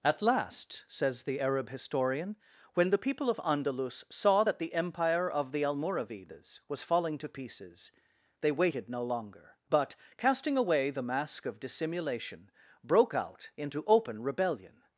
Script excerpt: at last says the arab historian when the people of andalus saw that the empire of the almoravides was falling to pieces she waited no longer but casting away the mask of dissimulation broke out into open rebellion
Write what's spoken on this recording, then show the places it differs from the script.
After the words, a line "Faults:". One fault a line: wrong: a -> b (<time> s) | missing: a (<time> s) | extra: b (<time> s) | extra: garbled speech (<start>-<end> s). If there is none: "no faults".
at last says the arab historian when the people of andalus saw that the empire of the almoravides was falling to pieces they waited no longer but casting away the mask of dissimulation broke out into open rebellion
Faults:
wrong: she -> they (8.4 s)